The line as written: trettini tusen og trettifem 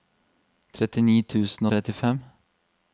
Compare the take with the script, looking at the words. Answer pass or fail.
pass